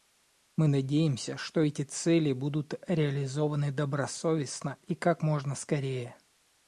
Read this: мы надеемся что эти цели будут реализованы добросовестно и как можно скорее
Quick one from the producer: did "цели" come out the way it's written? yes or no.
yes